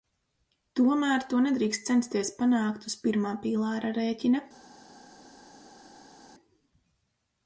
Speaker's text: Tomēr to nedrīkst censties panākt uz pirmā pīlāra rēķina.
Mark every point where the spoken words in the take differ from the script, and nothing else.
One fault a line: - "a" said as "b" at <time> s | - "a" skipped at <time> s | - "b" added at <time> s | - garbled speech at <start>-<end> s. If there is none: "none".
none